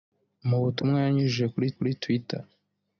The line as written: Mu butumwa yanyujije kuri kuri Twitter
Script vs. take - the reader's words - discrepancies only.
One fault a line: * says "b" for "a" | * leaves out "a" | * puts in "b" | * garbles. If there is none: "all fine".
all fine